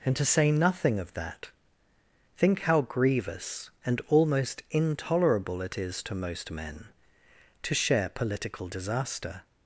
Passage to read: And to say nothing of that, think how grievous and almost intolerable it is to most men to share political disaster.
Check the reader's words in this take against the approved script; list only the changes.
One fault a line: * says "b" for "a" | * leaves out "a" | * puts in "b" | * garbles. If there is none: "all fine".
all fine